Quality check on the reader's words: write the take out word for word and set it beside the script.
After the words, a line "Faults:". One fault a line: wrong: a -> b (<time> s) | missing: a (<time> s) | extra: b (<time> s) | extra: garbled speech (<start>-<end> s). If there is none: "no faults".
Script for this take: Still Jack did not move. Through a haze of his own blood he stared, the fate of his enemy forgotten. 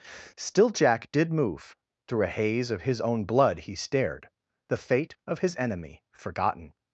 Still Jack did move. Through a haze of his own blood he stared, the fate of his enemy forgotten.
Faults:
missing: not (1.3 s)